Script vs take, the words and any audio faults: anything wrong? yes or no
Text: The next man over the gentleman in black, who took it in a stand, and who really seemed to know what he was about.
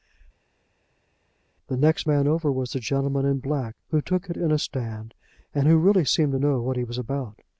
yes